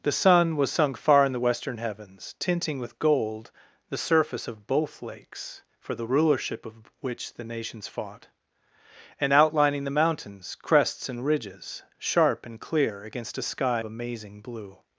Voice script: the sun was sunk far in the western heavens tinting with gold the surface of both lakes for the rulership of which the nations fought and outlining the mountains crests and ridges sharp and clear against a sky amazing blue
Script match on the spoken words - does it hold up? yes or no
yes